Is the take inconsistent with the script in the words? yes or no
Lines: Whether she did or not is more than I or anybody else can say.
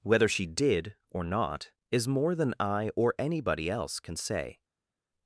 no